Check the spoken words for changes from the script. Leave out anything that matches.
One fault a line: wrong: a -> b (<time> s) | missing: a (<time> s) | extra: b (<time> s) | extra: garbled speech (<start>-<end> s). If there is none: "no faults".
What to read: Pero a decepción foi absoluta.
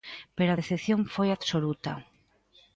no faults